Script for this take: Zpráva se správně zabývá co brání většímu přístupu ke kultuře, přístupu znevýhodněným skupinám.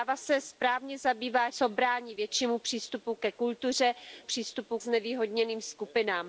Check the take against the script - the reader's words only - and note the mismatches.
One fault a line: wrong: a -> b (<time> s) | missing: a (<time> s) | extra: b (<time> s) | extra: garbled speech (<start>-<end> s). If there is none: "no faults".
no faults